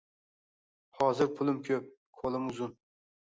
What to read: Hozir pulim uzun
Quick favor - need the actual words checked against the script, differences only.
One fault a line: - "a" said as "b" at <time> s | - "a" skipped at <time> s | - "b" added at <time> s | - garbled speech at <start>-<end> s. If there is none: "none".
- "ko`p qo`lim" added at 1.7 s